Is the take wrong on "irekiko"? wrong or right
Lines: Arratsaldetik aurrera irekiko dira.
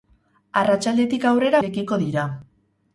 right